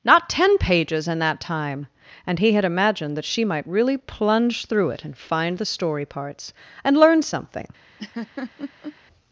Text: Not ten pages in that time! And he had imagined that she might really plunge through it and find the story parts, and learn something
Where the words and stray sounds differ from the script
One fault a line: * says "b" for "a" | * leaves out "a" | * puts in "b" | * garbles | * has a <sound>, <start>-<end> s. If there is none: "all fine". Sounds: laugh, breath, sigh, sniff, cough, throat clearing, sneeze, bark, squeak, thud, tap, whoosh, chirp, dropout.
* has a laugh, 8.0-9.0 s